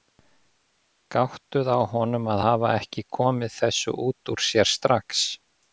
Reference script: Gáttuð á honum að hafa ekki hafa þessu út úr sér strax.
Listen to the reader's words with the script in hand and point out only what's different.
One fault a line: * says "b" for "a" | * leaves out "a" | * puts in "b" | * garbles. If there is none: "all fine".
* says "komið" for "hafa"